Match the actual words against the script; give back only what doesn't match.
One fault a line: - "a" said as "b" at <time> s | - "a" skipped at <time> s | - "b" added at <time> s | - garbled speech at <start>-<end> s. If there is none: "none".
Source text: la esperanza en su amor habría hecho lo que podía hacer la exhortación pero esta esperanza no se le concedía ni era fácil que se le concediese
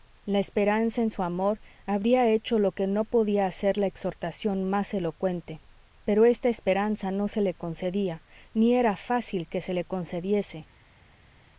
- "no" added at 2.9 s
- "más elocuente" added at 4.7 s